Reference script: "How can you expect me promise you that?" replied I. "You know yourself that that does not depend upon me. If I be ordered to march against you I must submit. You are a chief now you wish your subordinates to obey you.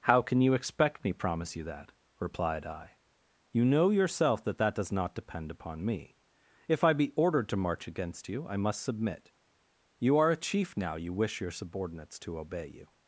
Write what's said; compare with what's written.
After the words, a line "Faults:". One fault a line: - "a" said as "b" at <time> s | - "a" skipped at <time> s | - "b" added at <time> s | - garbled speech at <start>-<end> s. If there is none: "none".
"How can you expect me promise you that?" replied I. "You know yourself that that does not depend upon me. If I be ordered to march against you I must submit. You are a chief now you wish your subordinates to obey you.
Faults:
none